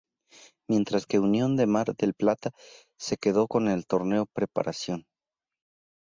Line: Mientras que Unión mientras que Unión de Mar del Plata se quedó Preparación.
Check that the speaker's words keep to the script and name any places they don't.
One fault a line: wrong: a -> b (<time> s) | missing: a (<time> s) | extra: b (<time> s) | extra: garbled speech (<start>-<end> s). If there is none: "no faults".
missing: mientras que Unión (1.6 s)
extra: con el Torneo (3.4 s)